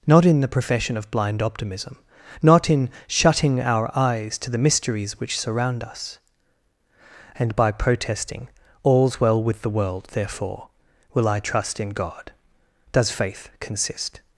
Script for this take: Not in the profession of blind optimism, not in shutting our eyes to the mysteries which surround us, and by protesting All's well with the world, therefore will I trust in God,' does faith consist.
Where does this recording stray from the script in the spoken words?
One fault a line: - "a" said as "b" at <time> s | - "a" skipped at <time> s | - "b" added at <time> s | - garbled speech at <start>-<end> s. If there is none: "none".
none